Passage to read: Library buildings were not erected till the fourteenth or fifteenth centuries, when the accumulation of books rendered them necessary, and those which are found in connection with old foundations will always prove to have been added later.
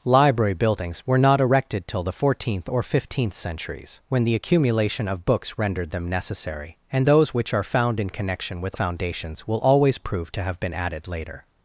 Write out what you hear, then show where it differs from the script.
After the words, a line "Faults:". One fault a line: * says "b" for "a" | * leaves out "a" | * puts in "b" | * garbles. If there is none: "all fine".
Library buildings were not erected till the fourteenth or fifteenth centuries, when the accumulation of books rendered them necessary, and those which are found in connection with foundations will always prove to have been added later.
Faults:
* leaves out "old"